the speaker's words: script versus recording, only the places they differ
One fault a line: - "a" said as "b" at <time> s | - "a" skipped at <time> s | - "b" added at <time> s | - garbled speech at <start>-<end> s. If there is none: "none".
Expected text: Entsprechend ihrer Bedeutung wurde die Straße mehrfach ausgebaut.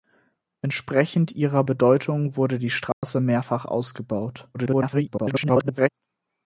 - garbled speech at 4.5-5.9 s